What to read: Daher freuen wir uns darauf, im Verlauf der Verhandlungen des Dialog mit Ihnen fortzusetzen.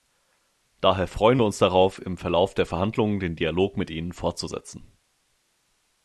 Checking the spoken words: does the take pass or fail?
fail